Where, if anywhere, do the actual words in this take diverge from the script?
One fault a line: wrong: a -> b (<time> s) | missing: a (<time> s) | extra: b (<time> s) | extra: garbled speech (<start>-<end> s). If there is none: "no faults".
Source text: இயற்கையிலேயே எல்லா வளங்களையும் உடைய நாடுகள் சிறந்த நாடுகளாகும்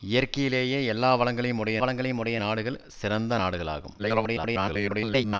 extra: வளங்களையும் உடைய (1.8 s)
extra: garbled speech (4.0-5.4 s)